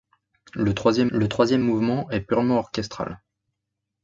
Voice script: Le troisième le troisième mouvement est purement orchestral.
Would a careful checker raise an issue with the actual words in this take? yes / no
no